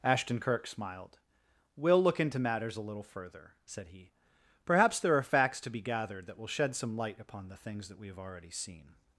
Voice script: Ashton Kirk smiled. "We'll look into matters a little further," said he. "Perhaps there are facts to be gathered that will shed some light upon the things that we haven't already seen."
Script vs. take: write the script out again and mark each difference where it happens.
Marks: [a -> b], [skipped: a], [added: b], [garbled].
Ashton Kirk smiled. "We'll look into matters a little further," said he. "Perhaps there are facts to be gathered that will shed some light upon the things that we [haven't -> have] already seen."